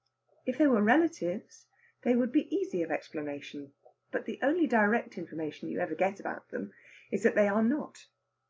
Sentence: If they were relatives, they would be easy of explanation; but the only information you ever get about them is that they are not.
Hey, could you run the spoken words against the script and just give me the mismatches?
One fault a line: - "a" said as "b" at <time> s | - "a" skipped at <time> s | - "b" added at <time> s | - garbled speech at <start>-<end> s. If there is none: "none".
- "direct" added at 4.7 s